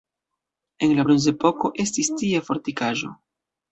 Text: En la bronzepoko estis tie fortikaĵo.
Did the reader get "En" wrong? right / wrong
right